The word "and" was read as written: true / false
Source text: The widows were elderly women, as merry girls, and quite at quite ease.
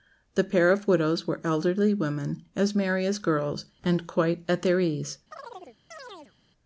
true